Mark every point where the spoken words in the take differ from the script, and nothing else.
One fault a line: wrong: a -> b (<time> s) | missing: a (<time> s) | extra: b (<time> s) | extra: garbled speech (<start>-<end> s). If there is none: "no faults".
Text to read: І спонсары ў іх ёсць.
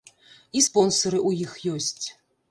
no faults